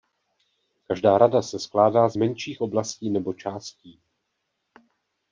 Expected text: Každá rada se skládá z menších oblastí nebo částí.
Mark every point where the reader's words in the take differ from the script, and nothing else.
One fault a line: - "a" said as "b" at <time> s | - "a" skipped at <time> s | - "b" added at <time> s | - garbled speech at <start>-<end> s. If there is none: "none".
none